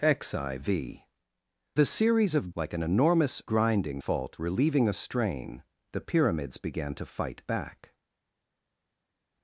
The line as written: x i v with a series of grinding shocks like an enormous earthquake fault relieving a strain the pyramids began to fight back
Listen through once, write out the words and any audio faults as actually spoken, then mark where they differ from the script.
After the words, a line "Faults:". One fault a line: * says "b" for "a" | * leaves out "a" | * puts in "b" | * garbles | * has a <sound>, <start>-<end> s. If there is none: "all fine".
x i v a series of like an enormous grinding fault relieving a strain the pyramids began to fight back
Faults:
* leaves out "with"
* leaves out "grinding shocks"
* says "grinding" for "earthquake"